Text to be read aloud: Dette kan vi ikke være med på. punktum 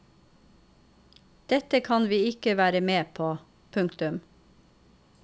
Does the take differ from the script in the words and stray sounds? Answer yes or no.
no